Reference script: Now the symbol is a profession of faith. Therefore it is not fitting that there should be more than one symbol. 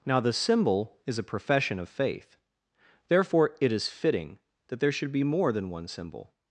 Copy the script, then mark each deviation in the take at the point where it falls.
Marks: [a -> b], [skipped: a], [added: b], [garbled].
Now the symbol is a profession of faith. Therefore it is [skipped: not] fitting that there should be more than one symbol.